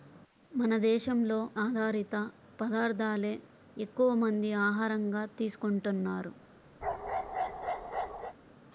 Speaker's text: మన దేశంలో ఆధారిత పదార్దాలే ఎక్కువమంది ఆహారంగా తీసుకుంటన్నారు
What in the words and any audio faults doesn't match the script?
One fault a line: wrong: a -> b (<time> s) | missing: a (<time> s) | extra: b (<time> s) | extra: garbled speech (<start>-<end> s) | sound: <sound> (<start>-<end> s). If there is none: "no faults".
sound: bark (6.8-8.3 s)